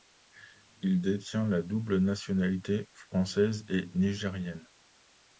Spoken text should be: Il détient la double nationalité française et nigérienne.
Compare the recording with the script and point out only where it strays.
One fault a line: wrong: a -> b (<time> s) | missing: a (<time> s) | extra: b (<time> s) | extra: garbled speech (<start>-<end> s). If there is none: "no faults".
no faults